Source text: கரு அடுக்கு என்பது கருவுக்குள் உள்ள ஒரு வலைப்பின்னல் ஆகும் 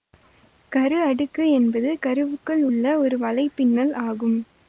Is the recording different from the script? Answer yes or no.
no